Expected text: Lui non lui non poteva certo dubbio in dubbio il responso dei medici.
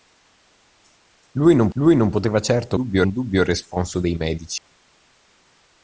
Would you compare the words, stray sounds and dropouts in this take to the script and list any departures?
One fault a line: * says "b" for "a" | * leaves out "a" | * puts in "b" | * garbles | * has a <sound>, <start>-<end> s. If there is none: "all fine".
* has a dropout, 4.6-4.7 s